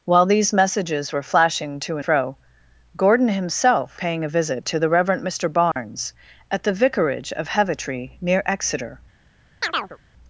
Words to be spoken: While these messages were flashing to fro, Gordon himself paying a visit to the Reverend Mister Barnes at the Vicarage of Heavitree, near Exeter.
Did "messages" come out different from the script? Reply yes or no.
no